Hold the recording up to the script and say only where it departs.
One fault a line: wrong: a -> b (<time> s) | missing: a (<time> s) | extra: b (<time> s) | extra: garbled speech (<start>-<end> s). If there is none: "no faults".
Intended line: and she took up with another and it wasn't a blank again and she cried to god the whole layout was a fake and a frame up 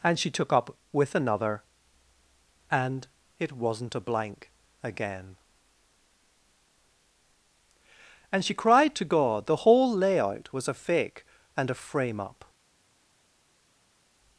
no faults